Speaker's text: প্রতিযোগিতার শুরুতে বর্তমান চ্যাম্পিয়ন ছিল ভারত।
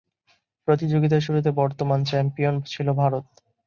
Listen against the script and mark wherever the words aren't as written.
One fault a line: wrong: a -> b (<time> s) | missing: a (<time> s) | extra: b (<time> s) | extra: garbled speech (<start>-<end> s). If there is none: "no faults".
no faults